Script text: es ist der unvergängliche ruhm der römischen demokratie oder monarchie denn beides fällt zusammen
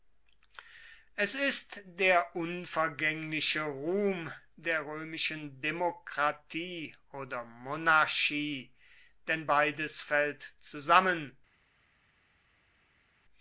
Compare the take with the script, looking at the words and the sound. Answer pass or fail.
pass